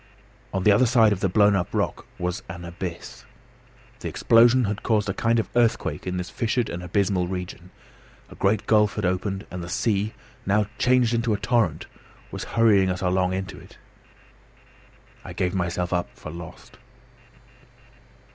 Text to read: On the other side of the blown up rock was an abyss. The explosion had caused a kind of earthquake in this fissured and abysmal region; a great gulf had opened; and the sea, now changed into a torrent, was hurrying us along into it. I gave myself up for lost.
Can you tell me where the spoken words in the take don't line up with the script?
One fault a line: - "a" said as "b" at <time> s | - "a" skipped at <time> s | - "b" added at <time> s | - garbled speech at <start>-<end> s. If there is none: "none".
none